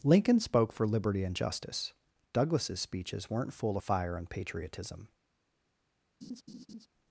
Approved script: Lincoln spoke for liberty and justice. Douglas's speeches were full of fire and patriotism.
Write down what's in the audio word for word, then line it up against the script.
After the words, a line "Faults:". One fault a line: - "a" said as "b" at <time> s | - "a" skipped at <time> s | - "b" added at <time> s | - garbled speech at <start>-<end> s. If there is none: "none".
Lincoln spoke for liberty and justice. Douglas's speeches weren't full of fire and patriotism.
Faults:
- "were" said as "weren't" at 3.3 s